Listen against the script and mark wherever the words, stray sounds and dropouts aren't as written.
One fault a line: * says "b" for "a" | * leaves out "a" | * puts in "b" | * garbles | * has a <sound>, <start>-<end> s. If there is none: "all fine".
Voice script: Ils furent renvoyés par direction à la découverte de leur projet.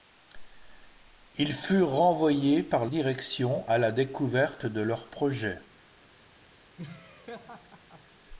* has a laugh, 6.8-8.1 s